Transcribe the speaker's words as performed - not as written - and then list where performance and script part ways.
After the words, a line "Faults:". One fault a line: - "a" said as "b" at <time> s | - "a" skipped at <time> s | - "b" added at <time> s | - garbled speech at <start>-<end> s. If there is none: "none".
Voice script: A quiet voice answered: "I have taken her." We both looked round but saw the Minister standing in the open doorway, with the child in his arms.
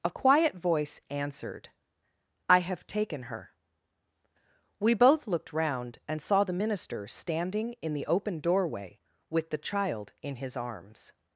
A quiet voice answered: "I have taken her." We both looked round and saw the Minister standing in the open doorway, with the child in his arms.
Faults:
- "but" said as "and" at 6.1 s